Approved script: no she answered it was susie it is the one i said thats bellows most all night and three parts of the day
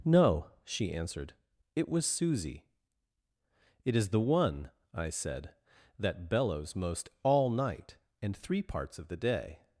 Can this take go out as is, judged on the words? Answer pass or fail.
fail